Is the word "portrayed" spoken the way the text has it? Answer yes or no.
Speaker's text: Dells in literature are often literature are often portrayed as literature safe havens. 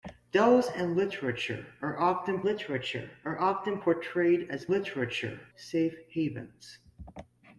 yes